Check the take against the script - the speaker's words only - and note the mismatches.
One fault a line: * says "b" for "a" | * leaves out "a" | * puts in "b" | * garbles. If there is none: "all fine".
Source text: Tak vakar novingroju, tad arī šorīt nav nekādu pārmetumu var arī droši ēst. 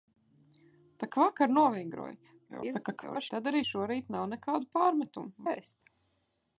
* garbles
* leaves out "var arī droši"